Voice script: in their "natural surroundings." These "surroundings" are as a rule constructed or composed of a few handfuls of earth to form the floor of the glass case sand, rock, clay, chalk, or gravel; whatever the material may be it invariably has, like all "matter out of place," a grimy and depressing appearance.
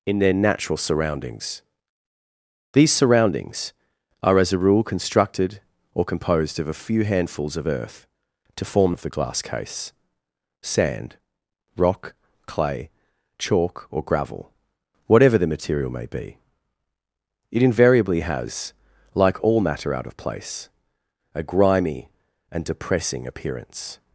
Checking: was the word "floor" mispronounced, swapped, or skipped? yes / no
yes